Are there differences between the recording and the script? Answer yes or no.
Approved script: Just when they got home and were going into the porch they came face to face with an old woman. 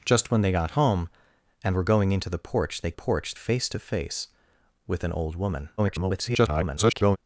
yes